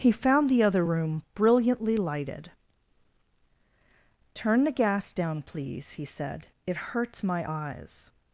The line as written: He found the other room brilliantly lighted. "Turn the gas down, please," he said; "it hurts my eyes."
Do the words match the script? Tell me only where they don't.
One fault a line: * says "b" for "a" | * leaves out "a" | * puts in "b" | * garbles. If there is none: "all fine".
all fine